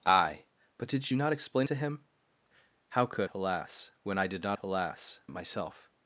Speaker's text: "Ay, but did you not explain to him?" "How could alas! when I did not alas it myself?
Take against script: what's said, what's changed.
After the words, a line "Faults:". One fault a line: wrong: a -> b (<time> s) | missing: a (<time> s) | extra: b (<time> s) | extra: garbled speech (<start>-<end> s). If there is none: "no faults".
"Ay, but did you not explain to him?" "How could alas! when I did not alas it myself?
Faults:
no faults